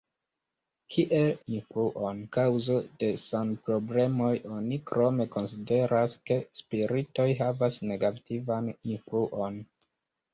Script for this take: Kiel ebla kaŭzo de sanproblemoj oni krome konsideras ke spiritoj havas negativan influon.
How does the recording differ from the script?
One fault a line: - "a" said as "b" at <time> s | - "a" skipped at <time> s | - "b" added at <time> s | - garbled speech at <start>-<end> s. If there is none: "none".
- "ebla" said as "influon" at 1.4 s